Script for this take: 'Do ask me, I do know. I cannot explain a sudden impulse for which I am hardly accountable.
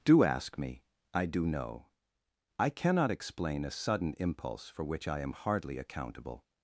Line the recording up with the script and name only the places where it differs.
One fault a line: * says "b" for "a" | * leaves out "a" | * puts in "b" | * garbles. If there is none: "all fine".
all fine